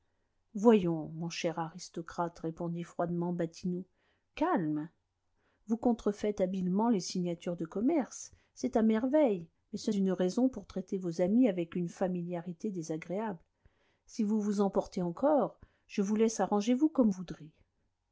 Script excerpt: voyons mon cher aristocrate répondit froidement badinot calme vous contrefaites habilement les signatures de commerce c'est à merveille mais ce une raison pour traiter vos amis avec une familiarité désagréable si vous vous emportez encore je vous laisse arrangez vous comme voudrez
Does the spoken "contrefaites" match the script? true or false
true